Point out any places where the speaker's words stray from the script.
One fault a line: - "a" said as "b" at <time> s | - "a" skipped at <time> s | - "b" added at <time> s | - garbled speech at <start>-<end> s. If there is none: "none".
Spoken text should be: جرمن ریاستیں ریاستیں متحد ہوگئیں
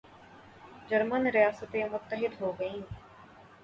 - "ریاستیں" skipped at 1.8 s